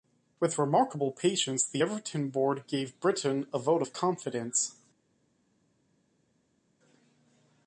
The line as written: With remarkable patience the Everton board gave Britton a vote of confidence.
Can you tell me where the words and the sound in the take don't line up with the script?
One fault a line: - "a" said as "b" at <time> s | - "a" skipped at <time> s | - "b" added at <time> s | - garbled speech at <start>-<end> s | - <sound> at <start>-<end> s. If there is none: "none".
none